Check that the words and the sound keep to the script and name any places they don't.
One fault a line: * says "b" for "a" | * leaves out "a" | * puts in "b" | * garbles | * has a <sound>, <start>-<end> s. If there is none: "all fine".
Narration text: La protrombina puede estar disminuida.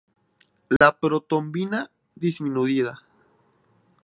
* has a dropout, 0.8-0.8 s
* leaves out "puede estar"